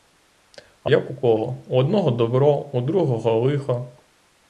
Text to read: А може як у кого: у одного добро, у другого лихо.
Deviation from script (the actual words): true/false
true